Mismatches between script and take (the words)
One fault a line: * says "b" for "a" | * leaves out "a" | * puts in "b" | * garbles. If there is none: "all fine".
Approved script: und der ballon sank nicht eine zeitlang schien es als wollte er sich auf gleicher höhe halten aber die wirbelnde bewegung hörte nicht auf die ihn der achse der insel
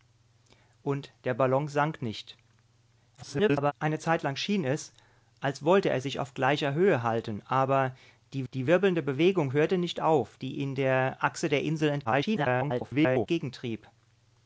* garbles
* puts in "die"
* garbles